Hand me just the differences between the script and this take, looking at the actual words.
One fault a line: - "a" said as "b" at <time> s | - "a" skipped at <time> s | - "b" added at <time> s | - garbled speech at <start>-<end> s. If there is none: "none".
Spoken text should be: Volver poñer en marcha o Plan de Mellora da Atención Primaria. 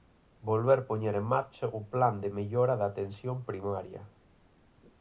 none